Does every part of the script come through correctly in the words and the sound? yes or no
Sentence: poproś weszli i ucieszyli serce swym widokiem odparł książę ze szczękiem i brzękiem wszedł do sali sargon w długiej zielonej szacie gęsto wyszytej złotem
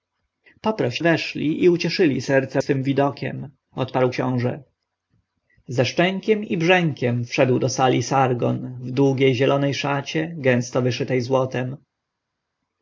yes